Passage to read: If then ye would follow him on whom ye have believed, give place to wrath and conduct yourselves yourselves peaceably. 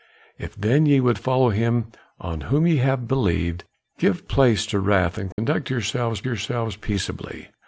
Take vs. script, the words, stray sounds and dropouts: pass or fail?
fail